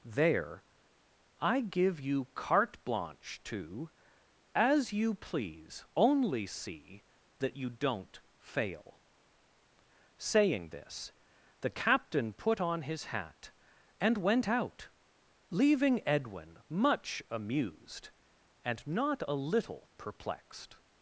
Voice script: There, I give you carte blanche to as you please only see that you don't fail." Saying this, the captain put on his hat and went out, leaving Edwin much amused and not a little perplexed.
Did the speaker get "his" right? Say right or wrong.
right